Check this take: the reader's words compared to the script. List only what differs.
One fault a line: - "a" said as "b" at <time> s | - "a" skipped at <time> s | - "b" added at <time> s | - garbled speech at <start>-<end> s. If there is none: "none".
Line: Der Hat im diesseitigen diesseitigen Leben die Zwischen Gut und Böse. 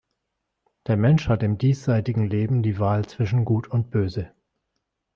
- "Mensch" added at 1.0 s
- "diesseitigen" skipped at 2.2 s
- "Wahl" added at 2.8 s